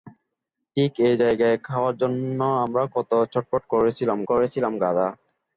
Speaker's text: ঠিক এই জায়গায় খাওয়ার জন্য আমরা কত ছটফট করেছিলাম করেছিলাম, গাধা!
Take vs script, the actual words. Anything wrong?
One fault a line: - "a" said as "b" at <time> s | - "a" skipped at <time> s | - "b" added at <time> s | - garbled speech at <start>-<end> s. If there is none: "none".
none